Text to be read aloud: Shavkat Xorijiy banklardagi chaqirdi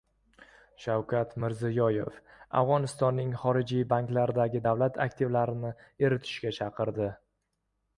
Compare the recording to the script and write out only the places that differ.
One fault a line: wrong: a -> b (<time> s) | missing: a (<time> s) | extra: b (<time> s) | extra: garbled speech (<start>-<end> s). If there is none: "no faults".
extra: Mirziyoyev Afg‘onistonning (1.4 s)
extra: davlat aktivlarini eritishga (4.7 s)